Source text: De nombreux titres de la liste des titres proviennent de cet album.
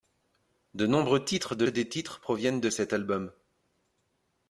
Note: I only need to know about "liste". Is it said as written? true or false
false